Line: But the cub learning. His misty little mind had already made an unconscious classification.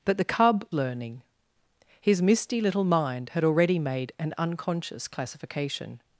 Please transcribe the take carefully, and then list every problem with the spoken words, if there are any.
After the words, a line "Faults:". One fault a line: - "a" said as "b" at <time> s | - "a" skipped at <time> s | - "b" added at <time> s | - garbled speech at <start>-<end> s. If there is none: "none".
But the cub learning. His misty little mind had already made an unconscious classification.
Faults:
none